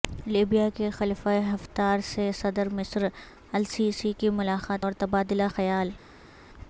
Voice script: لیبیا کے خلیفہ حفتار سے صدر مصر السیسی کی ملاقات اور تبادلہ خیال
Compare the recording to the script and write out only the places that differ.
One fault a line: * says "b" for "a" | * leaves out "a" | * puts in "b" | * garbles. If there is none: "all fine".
all fine